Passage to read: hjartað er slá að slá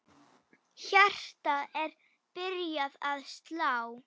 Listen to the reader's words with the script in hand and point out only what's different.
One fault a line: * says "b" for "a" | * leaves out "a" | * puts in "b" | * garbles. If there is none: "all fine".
* says "byrjað" for "slá"